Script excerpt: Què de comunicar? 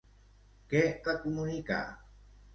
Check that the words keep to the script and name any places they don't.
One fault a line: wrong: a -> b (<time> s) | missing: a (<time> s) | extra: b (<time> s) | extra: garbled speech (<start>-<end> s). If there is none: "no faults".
no faults